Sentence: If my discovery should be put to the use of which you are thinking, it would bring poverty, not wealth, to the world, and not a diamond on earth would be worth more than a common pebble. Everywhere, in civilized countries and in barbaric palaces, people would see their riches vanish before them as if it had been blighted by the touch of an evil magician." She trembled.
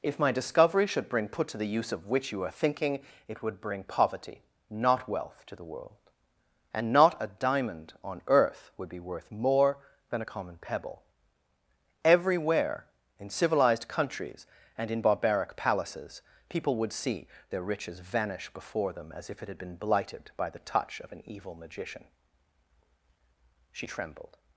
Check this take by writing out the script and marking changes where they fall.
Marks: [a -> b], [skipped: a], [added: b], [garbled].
If my discovery should [be -> bring] put to the use of which you are thinking, it would bring poverty, not wealth, to the world, and not a diamond on earth would be worth more than a common pebble. Everywhere, in civilized countries and in barbaric palaces, people would see their riches vanish before them as if it had been blighted by the touch of an evil magician." She trembled.